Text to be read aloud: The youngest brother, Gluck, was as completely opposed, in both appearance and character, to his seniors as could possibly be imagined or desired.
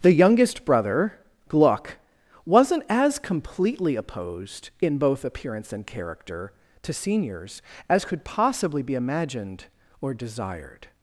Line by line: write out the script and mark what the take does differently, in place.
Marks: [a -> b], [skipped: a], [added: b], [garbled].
The youngest brother, Gluck, [was -> wasn't] as completely opposed, in both appearance and character, to [skipped: his] seniors as could possibly be imagined or desired.